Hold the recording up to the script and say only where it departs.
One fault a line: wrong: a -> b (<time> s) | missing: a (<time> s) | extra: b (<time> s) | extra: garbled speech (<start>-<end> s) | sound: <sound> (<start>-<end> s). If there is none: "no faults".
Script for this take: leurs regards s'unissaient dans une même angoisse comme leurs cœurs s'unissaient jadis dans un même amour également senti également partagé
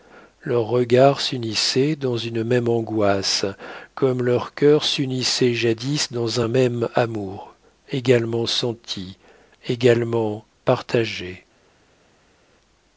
no faults